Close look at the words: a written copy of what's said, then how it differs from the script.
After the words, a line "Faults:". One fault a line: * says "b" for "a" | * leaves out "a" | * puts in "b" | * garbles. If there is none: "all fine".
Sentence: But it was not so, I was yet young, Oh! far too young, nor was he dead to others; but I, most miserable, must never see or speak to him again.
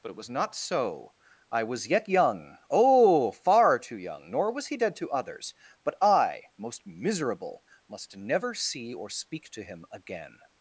But it was not so, I was yet young, Oh! far too young, nor was he dead to others; but I, most miserable, must never see or speak to him again.
Faults:
all fine